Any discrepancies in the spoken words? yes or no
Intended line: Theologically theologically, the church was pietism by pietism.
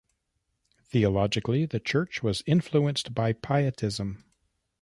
yes